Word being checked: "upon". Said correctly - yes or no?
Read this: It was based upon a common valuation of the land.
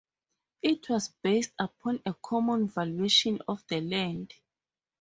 yes